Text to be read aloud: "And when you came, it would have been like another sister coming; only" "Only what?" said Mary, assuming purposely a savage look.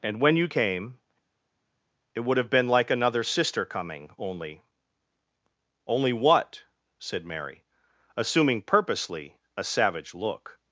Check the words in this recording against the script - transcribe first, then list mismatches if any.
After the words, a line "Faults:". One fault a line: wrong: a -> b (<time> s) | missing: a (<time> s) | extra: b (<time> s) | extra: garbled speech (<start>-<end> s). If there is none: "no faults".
"And when you came, it would have been like another sister coming; only" "Only what?" said Mary, assuming purposely a savage look.
Faults:
no faults